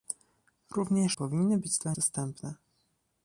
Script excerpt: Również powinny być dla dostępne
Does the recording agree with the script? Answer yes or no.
yes